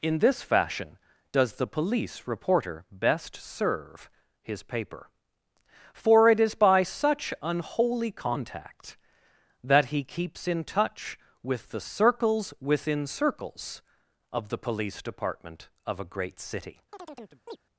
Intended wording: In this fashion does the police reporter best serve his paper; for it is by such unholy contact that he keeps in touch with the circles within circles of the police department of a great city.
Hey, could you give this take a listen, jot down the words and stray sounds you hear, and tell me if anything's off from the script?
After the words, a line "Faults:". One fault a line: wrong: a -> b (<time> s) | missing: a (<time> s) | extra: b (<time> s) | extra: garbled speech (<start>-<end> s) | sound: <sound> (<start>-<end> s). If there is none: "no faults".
In this fashion does the police reporter best serve his paper; for it is by such unholy contact that he keeps in touch with the circles within circles of the police department of a great city.
Faults:
sound: chirp (16.9-17.6 s)